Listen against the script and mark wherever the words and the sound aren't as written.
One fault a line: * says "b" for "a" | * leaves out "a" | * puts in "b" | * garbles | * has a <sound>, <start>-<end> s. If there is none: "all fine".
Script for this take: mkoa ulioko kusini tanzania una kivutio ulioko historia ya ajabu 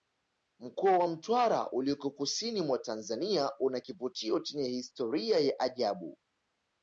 * puts in "wa mtwara"
* puts in "mwa"
* says "chenye" for "ulioko"